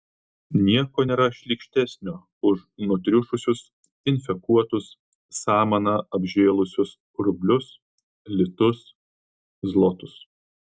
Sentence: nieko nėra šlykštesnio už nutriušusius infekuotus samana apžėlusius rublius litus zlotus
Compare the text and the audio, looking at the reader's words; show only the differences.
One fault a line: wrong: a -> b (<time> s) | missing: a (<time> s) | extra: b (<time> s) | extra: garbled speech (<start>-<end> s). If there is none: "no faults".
no faults